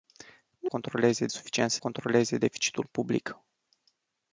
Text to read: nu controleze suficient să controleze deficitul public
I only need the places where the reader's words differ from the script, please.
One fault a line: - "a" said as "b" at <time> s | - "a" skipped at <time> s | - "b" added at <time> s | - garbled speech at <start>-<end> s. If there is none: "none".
none